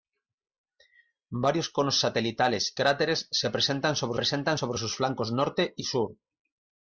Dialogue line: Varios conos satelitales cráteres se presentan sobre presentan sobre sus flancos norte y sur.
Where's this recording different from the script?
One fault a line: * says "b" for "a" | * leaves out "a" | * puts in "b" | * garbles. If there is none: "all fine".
all fine